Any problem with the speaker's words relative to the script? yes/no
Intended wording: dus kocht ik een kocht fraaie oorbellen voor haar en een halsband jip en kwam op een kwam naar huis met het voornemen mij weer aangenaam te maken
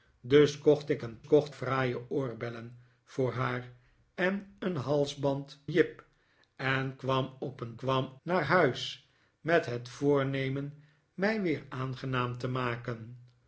no